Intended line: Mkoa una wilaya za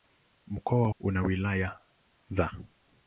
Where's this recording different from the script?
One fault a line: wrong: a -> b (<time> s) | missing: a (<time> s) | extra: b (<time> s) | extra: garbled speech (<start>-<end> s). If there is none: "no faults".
no faults